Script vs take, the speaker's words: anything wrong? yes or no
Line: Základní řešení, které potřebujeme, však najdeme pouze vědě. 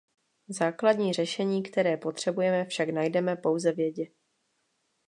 no